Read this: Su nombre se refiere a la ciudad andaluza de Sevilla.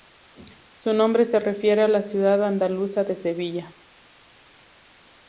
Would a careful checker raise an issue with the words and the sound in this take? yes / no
no